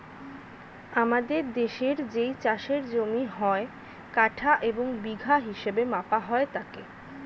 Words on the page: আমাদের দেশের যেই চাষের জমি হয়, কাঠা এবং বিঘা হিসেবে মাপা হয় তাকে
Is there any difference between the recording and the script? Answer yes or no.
no